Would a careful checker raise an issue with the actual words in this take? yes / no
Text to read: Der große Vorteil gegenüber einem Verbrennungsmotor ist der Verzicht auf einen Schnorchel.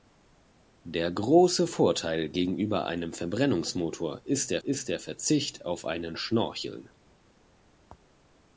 yes